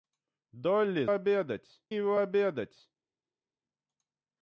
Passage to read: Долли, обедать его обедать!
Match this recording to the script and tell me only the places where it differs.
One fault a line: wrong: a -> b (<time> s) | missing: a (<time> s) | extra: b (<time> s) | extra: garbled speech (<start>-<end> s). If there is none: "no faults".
no faults